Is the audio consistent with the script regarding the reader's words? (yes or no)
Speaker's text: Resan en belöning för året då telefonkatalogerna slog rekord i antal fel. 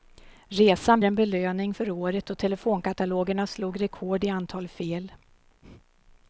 yes